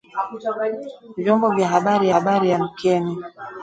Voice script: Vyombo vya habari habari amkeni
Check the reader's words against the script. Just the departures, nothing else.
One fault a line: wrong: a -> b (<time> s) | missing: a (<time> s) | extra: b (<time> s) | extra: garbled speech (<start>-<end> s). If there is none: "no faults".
no faults